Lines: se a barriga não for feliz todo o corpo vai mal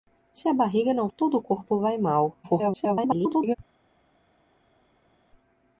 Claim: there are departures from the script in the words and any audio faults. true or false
true